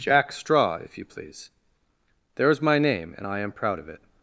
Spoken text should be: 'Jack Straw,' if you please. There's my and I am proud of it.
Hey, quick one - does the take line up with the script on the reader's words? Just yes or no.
no